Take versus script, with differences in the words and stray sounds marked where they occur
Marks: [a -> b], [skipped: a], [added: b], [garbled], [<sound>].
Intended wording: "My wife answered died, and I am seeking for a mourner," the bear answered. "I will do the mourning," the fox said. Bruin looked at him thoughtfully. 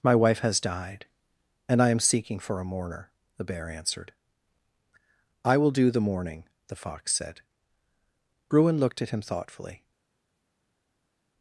"My wife [answered -> has] died, and I am seeking for a mourner," the bear answered. "I will do the mourning," the fox said. Bruin looked at him thoughtfully.